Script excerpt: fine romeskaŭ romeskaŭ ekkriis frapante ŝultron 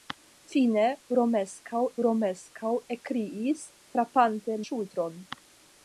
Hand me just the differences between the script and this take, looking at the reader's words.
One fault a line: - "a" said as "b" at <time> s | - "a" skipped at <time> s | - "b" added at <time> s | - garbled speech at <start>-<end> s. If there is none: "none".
none